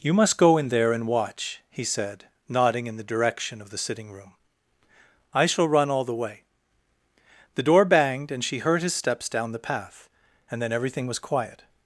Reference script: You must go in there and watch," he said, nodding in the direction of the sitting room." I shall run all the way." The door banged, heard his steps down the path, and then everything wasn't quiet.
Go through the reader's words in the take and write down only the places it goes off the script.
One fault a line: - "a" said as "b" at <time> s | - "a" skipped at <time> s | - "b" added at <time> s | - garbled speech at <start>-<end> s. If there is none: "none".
- "and she" added at 8.3 s
- "wasn't" said as "was" at 11.1 s